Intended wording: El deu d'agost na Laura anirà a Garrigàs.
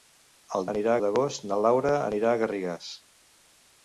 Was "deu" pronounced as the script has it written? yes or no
no